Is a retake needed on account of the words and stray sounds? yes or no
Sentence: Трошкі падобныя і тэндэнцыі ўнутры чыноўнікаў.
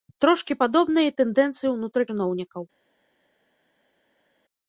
no